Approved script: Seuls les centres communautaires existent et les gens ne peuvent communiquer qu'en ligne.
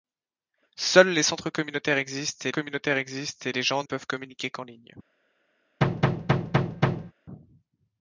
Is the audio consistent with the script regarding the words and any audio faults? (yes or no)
no